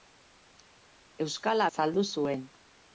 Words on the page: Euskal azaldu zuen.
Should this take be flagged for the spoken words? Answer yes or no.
no